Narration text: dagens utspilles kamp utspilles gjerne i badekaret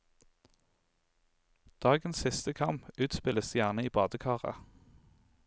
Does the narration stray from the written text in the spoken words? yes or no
yes